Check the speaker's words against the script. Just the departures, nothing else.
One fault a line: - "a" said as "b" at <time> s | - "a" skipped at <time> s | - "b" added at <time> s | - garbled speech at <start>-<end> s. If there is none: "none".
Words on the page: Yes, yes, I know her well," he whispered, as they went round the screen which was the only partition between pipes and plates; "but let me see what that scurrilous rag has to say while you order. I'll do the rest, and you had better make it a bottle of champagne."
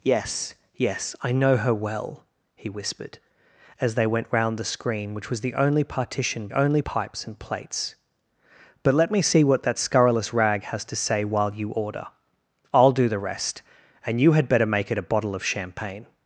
- "between" said as "only" at 6.5 s